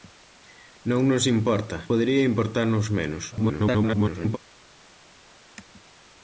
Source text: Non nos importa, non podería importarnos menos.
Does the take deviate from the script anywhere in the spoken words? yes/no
yes